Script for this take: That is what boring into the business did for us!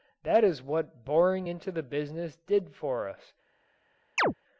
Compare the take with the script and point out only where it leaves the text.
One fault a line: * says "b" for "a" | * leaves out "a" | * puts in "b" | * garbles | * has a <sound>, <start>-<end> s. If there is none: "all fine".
* has a chirp, 4.2-4.3 s